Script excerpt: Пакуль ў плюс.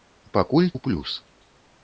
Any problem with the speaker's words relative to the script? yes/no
no